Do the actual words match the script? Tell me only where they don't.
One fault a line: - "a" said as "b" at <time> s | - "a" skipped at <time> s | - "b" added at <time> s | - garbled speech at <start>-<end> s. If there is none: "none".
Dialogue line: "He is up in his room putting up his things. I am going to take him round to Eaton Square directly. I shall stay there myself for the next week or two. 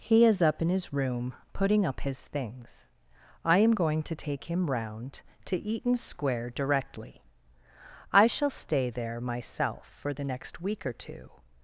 none